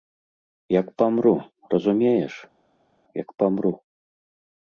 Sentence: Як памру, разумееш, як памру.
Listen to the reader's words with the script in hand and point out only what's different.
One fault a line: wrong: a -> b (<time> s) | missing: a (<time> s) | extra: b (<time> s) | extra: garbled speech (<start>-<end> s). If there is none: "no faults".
no faults